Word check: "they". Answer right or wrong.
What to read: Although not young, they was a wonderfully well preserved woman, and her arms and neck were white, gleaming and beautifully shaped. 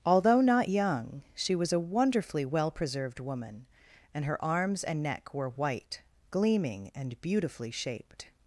wrong